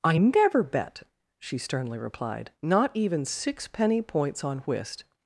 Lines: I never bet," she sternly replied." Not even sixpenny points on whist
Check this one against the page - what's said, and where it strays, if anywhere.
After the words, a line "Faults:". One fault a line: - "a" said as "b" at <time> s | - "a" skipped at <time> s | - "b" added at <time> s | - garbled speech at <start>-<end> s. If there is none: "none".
I never bet," she sternly replied." Not even sixpenny points on whist
Faults:
none